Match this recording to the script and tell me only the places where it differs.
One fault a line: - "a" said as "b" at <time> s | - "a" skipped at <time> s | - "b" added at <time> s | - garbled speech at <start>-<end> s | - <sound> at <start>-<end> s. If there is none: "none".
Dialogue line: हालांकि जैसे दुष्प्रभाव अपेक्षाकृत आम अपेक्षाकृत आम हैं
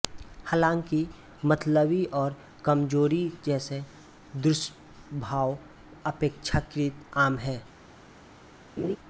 - "मतली और कमजोरी" added at 1.4 s
- "अपेक्षाकृत आम" skipped at 7.4 s
- laugh at 8.8-9.0 s